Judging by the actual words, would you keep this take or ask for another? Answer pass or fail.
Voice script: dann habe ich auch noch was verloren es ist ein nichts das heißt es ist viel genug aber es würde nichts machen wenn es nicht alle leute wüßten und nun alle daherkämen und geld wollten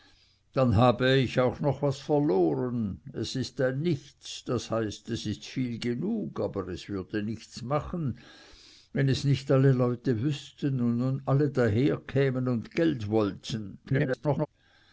fail